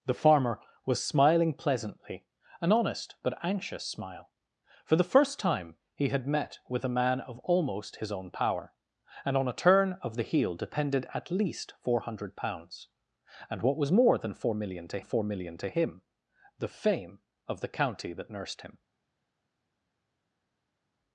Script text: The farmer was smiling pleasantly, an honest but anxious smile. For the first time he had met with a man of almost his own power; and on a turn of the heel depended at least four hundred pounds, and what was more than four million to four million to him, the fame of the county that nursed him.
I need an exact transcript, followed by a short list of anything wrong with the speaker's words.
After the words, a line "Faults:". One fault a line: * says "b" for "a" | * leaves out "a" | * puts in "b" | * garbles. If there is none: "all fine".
The farmer was smiling pleasantly, an honest but anxious smile. For the first time he had met with a man of almost his own power; and on a turn of the heel depended at least four hundred pounds, and what was more than four million to four million to him, the fame of the county that nursed him.
Faults:
all fine